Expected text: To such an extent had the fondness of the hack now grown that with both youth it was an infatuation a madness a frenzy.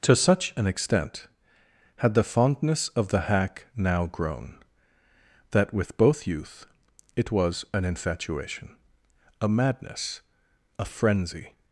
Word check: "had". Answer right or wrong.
right